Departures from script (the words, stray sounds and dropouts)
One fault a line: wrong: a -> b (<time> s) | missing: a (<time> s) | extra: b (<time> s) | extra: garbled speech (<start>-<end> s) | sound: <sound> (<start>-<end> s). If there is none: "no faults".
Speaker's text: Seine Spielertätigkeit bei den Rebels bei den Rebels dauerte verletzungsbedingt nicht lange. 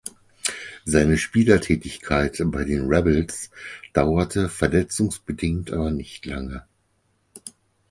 missing: bei den Rebels (3.5 s)
extra: aber (5.7 s)